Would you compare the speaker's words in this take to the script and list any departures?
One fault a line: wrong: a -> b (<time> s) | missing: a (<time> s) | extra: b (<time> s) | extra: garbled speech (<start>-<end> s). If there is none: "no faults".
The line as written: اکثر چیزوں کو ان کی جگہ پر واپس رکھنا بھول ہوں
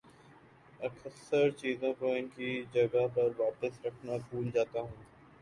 extra: جاتا (4.5 s)